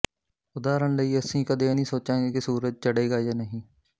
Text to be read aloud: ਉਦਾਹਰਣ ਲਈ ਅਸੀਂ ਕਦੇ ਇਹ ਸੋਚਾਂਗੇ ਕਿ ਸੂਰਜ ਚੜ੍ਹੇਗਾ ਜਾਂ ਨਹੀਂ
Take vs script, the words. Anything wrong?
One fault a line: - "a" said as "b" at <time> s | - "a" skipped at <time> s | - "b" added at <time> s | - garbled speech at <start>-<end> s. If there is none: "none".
- "ਨਹੀਂ" added at 1.7 s